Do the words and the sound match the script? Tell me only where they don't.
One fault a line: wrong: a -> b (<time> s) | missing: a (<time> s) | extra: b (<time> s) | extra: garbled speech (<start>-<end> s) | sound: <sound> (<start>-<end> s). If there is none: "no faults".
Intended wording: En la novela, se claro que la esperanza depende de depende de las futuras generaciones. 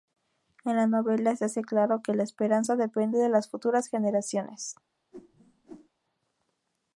extra: hace (1.4 s)
missing: depende de (3.3 s)
sound: whoosh (5.1-5.9 s)